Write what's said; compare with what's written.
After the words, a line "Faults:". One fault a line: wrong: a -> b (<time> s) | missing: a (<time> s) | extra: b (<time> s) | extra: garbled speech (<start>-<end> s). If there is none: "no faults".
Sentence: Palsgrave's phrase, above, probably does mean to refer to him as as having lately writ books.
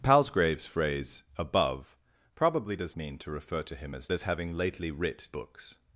Palsgrave's phrase, above, probably does mean to refer to him as as having lately writ books.
Faults:
no faults